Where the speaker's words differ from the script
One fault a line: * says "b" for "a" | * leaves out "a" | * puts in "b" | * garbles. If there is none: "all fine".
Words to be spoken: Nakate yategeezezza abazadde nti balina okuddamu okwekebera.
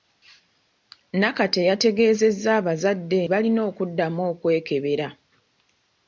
* leaves out "nti"